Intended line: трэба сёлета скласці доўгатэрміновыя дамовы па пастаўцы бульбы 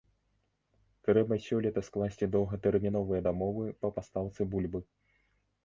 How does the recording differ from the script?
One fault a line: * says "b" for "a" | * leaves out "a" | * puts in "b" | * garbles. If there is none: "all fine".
all fine